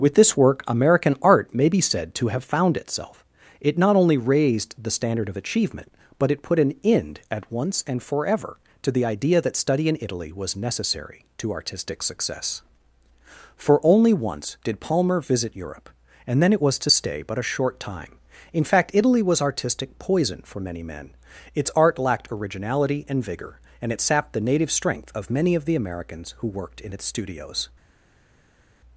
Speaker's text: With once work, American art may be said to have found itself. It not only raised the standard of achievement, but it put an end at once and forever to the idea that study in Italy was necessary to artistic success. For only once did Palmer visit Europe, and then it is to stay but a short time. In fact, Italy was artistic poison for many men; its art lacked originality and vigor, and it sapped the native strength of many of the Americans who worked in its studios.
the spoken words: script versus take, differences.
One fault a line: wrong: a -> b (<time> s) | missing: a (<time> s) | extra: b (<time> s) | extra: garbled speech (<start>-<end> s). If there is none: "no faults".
wrong: once -> this (0.1 s)
wrong: is -> was (16.6 s)